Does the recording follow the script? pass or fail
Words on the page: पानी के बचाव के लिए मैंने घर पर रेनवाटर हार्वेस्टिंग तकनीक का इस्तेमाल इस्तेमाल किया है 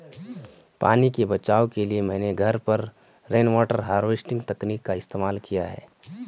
fail